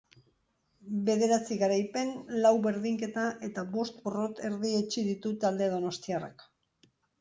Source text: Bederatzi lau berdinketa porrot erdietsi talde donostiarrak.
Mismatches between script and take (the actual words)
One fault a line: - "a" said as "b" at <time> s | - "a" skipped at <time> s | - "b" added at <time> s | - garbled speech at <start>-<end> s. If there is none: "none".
- "garaipen" added at 1.6 s
- "eta bost" added at 3.5 s
- "ditu" added at 5.1 s